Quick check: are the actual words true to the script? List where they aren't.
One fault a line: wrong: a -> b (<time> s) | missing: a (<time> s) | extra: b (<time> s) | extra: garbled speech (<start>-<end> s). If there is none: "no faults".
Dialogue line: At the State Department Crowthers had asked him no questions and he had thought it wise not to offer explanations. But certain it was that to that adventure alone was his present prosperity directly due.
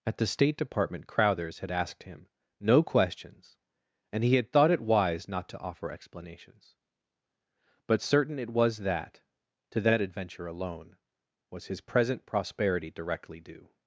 no faults